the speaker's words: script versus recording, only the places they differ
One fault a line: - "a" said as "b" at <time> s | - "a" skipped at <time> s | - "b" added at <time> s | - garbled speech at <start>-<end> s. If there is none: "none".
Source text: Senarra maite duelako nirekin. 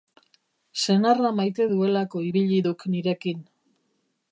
- "ibili duk" added at 2.3 s